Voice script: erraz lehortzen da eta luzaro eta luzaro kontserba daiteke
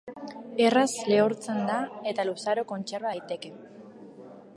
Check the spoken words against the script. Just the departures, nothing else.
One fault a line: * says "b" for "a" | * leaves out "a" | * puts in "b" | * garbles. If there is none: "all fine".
* leaves out "eta luzaro"